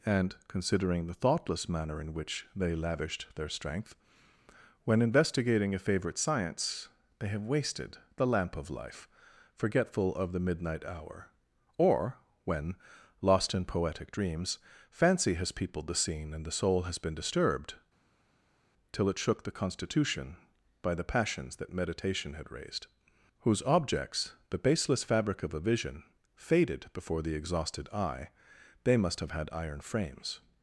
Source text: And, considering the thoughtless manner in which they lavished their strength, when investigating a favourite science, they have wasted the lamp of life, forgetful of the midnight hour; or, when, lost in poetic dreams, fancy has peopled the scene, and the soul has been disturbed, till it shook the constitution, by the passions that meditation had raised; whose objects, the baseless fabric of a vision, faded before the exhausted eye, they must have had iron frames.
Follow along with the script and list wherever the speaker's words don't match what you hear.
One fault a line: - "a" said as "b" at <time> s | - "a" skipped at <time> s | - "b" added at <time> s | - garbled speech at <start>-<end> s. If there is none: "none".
none